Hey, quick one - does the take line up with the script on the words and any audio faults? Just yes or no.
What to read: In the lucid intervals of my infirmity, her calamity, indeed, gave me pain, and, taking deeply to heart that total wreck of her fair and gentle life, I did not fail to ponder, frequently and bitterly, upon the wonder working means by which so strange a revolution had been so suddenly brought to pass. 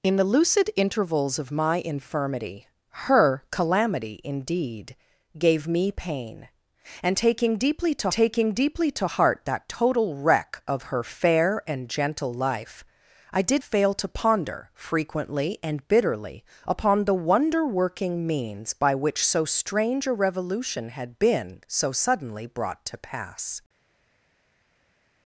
no